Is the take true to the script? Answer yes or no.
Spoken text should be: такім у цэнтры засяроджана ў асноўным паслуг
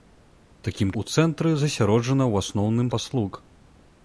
yes